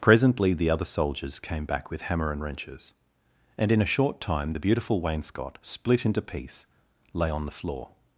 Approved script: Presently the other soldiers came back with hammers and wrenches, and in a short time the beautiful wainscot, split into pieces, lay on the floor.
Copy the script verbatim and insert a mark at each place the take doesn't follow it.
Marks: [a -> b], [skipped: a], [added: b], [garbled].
Presently the other soldiers came back with [hammers -> hammer] and wrenches, and in a short time the beautiful wainscot, split into [pieces, -> piece] lay on the floor.